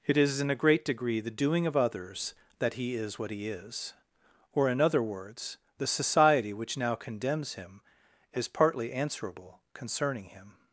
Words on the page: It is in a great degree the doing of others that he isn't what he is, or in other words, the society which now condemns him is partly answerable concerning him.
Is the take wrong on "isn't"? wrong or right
wrong